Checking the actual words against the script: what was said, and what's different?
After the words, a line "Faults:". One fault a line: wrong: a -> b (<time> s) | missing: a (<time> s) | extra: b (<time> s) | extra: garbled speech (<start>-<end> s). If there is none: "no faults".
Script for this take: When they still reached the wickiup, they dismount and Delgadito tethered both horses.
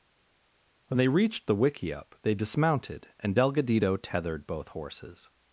When they reached the wickiup, they dismounted and Delgadito tethered both horses.
Faults:
missing: still (1.1 s)
wrong: dismount -> dismounted (2.4 s)